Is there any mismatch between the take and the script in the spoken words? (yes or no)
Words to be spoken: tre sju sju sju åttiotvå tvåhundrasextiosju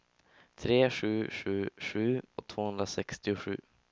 yes